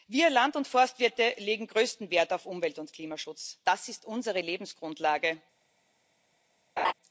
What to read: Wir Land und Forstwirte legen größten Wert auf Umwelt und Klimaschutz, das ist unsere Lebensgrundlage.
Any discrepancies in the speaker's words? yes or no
no